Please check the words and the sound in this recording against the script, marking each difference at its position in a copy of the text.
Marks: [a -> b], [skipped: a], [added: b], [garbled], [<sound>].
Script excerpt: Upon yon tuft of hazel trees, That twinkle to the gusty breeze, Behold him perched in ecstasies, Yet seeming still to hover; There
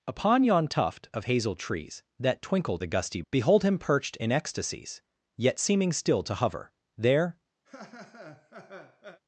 Upon yon tuft of hazel trees, That twinkle [skipped: to] the gusty [skipped: breeze,] Behold him perched in ecstasies, Yet seeming still to hover; There [laugh]